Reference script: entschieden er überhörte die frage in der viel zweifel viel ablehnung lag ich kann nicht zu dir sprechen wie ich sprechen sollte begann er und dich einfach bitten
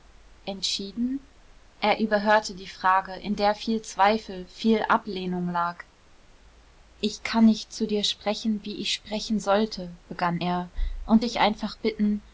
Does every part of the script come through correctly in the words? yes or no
yes